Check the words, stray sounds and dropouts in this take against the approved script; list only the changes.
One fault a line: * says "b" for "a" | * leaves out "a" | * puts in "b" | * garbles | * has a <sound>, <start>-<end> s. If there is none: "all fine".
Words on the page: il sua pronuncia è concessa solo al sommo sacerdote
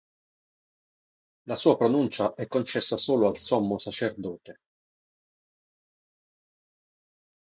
* says "la" for "il"